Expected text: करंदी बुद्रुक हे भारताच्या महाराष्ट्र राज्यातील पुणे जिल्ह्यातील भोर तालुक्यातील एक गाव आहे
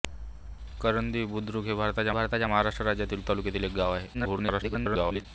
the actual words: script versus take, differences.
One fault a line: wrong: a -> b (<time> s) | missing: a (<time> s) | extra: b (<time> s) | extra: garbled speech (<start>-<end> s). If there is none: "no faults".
extra: भारताच्या (2.1 s)
missing: पुणे जिल्ह्यातील भोर (3.2 s)
extra: garbled speech (4.1-5.3 s)